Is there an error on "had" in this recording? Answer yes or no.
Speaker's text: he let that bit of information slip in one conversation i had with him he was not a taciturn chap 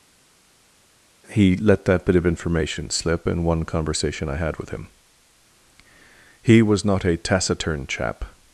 no